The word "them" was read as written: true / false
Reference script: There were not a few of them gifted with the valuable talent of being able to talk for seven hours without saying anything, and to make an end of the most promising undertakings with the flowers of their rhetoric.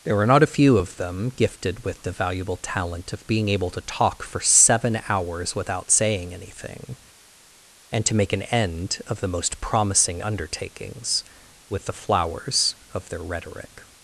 true